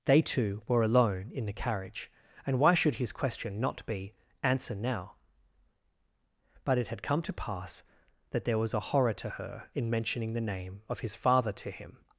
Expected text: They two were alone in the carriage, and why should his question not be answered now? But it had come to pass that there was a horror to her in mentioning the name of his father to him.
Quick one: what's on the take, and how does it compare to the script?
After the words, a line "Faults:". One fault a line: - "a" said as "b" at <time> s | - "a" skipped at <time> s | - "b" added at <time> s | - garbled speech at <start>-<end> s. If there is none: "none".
They two were alone in the carriage, and why should his question not be answer now? But it had come to pass that there was a horror to her in mentioning the name of his father to him.
Faults:
- "answered" said as "answer" at 4.4 s